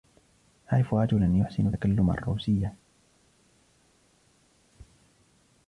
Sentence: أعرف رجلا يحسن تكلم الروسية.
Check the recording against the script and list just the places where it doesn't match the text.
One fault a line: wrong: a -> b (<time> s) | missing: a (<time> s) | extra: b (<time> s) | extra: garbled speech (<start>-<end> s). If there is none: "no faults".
no faults